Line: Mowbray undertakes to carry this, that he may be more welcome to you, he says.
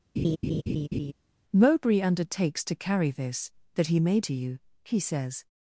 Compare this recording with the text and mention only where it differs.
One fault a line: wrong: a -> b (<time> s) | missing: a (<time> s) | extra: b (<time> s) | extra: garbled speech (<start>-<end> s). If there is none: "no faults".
missing: be more welcome (4.2 s)